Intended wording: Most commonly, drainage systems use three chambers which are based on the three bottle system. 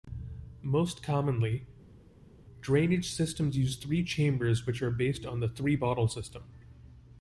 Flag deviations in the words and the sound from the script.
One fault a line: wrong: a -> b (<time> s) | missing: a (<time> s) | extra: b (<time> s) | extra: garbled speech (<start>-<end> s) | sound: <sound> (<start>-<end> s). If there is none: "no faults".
no faults